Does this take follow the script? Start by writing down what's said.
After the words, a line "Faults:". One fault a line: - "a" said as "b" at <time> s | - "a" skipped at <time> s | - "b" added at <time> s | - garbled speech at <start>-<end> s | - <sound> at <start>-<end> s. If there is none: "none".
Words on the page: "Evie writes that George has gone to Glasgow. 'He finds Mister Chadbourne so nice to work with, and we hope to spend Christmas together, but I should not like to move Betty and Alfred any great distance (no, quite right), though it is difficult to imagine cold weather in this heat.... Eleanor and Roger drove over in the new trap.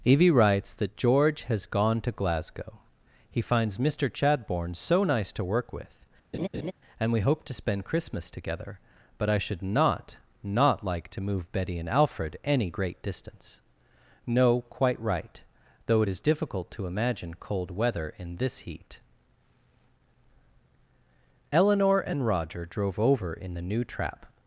"Evie writes that George has gone to Glasgow. 'He finds Mister Chadbourne so nice to work with, and we hope to spend Christmas together, but I should not not like to move Betty and Alfred any great distance (no, quite right), though it is difficult to imagine cold weather in this heat.... Eleanor and Roger drove over in the new trap.
Faults:
- laugh at 6.3-6.7 s
- "not" added at 10.4 s